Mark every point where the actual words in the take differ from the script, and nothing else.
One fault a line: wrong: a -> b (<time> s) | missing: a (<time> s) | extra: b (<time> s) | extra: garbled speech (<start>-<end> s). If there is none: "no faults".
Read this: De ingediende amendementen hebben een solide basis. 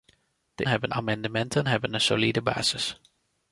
wrong: ingediende -> hebben (0.7 s)